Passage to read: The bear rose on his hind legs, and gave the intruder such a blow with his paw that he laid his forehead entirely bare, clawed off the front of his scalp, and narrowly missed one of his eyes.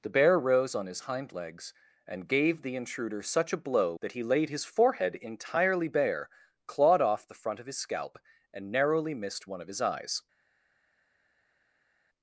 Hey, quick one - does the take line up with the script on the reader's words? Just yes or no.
no